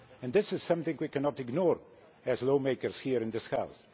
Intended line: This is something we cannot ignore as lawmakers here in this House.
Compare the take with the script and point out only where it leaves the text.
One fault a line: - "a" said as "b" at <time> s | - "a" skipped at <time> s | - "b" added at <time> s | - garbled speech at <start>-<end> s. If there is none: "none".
none